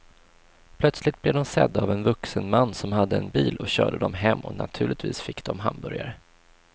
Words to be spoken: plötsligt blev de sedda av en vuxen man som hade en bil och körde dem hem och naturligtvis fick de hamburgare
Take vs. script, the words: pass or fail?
pass